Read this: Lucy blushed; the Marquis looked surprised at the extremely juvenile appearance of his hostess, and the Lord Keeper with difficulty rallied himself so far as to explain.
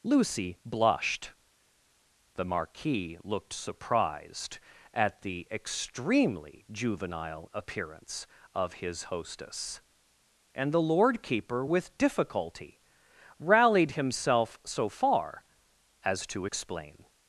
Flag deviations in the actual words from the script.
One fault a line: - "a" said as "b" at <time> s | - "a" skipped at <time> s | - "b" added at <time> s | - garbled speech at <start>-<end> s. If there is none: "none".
none